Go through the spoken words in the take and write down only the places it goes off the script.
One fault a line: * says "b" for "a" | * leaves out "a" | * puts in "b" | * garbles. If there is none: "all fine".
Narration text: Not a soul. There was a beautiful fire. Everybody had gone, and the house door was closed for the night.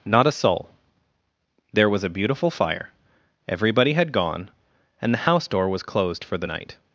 all fine